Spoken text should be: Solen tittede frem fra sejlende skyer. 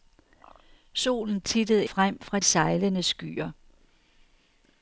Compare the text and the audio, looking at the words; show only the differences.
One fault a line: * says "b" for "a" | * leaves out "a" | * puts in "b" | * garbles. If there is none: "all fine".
all fine